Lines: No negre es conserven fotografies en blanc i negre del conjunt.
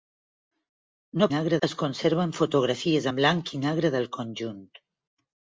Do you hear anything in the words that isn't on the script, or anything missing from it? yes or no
no